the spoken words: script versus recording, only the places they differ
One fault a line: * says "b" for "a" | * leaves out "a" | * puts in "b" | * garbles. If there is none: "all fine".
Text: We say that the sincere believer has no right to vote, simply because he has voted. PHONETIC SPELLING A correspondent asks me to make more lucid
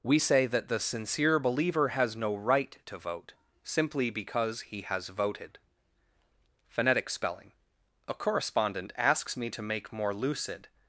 all fine